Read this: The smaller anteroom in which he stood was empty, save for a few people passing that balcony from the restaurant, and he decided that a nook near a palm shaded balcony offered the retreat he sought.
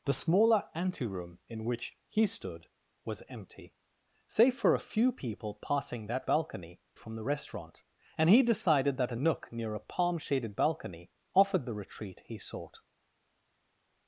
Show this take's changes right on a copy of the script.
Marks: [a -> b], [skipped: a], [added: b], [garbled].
The smaller anteroom in which he stood was empty, save for a few people passing that balcony from the restaurant, and he decided that a nook near a palm shaded balcony offered the retreat he sought.